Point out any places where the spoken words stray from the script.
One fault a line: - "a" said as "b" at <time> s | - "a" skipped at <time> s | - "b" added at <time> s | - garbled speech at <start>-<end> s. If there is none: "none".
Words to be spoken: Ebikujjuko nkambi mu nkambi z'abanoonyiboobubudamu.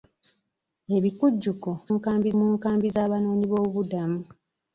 none